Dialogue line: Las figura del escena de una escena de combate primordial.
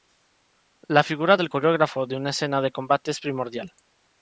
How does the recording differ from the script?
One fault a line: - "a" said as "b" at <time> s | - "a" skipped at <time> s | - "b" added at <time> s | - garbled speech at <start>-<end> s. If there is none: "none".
- "Las" said as "La" at 0.9 s
- "escena" said as "coreógrafo" at 1.5 s
- "es" added at 3.1 s